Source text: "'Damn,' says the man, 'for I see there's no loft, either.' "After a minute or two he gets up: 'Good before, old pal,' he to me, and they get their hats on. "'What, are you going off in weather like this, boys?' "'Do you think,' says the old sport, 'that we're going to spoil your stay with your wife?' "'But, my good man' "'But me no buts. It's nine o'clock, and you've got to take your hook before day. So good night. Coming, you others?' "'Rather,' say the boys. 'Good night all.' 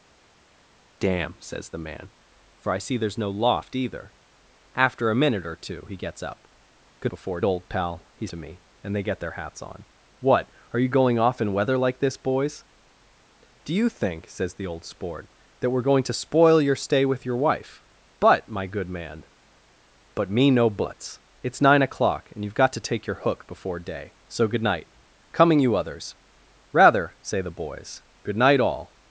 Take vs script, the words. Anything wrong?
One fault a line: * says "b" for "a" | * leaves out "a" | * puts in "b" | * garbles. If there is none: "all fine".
all fine